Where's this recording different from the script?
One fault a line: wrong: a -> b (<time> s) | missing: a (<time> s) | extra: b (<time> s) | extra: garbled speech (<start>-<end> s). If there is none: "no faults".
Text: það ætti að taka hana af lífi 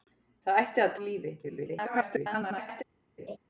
missing: taka hana (0.9 s)
extra: garbled speech (1.4-2.8 s)